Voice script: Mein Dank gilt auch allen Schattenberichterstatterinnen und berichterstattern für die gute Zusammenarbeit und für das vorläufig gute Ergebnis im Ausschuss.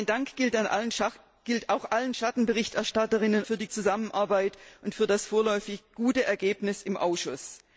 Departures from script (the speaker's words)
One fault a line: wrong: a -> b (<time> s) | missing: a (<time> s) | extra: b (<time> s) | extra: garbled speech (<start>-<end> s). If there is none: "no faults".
missing: und berichterstattern (3.4 s)
missing: gute (3.7 s)